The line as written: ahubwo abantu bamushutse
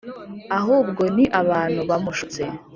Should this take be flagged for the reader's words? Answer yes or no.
yes